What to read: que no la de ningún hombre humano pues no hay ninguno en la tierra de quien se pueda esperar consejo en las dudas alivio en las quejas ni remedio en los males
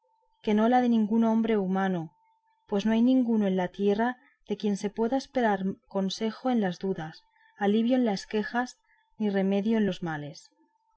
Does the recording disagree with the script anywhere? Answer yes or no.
no